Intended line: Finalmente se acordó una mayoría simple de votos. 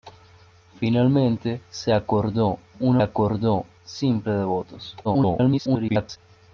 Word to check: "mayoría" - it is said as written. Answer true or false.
false